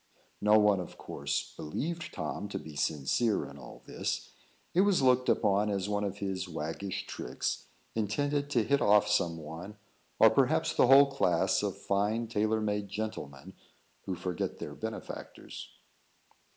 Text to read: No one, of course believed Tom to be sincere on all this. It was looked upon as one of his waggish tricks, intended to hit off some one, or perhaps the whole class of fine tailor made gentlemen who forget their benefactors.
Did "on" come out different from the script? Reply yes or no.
yes